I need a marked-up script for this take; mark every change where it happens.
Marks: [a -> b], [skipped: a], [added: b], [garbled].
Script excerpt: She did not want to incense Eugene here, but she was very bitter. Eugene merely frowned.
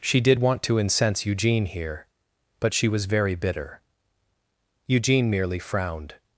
She did [skipped: not] want to incense Eugene here, but she was very bitter. Eugene merely frowned.